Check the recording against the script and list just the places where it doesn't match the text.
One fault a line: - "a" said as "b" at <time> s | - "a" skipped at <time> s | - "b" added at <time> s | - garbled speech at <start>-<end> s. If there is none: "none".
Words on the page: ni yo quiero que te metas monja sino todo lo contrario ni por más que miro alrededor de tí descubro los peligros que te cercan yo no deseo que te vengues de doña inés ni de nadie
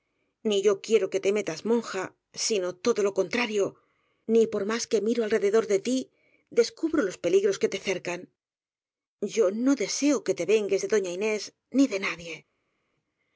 none